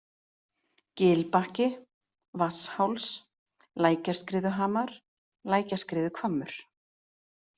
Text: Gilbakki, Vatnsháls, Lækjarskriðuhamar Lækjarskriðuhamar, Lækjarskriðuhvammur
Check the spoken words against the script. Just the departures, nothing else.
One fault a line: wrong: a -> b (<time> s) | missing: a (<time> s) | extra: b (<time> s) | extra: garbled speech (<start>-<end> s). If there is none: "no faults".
missing: Lækjarskriðuhamar (4.9 s)